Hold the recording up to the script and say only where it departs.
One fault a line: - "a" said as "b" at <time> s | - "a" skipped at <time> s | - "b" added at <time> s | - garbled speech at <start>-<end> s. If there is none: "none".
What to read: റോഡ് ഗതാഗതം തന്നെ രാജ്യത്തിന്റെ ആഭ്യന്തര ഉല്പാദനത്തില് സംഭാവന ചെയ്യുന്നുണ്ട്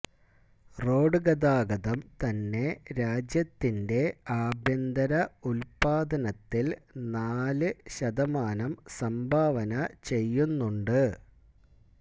- "നാല് ശതമാനം" added at 7.1 s